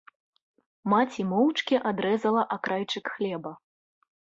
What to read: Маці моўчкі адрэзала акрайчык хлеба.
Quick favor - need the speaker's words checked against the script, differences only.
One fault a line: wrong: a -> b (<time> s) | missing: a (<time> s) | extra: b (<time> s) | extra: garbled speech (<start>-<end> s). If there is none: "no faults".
no faults